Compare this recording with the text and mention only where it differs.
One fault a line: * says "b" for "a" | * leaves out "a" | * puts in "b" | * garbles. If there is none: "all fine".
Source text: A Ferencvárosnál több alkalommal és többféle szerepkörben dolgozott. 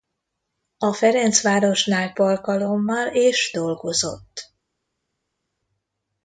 * leaves out "több"
* leaves out "többféle szerepkörben"